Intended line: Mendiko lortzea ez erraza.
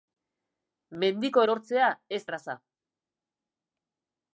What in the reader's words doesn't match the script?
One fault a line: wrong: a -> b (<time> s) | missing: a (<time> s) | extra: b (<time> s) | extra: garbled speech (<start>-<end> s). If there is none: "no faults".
no faults